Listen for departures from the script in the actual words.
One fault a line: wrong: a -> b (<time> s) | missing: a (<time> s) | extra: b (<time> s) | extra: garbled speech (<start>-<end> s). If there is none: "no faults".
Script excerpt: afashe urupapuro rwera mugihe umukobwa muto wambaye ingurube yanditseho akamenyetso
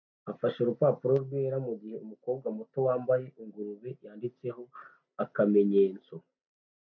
no faults